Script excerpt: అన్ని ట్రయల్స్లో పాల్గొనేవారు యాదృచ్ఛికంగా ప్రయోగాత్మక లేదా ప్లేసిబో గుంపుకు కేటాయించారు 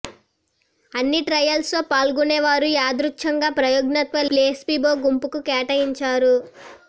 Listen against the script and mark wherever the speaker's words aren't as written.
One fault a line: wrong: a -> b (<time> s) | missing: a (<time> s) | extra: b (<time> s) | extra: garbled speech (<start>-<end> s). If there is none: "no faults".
missing: లేదా (4.2 s)